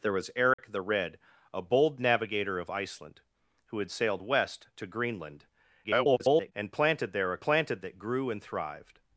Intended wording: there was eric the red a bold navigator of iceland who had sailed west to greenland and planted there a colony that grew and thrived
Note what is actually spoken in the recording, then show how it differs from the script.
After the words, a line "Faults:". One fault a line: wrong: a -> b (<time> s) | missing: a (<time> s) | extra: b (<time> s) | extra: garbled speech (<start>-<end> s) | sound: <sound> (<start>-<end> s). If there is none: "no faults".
there was eric the red a bold navigator of iceland who had sailed west to greenland [garbled] and planted there a planted that grew and thrived
Faults:
sound: dropout (0.5-0.6 s)
extra: garbled speech (5.8-6.5 s)
wrong: colony -> planted (7.4 s)